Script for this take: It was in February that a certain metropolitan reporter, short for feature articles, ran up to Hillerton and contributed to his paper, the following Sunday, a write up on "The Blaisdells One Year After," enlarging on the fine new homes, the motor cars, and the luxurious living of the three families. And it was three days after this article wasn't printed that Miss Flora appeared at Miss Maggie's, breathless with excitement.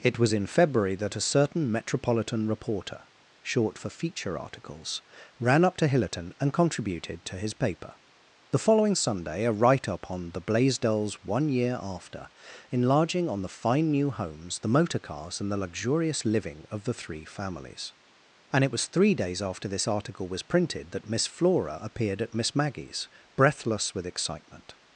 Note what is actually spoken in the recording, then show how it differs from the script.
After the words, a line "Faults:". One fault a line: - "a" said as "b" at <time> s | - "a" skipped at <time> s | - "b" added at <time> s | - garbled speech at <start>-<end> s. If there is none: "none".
It was in February that a certain metropolitan reporter, short for feature articles, ran up to Hillerton and contributed to his paper, the following Sunday, a write up on "The Blaisdells One Year After," enlarging on the fine new homes, the motor cars, and the luxurious living of the three families. And it was three days after this article was printed that Miss Flora appeared at Miss Maggie's, breathless with excitement.
Faults:
- "wasn't" said as "was" at 20.3 s